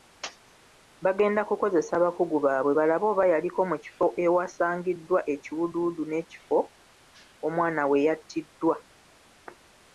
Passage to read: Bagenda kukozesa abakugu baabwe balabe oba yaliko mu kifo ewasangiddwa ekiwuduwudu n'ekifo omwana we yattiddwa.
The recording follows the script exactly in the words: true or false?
true